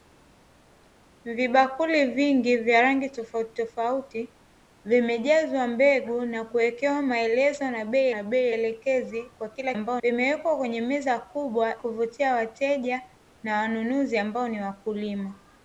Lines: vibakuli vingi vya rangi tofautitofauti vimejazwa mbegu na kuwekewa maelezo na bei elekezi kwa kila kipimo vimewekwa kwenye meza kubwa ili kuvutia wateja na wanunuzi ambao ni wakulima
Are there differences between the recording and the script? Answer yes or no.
yes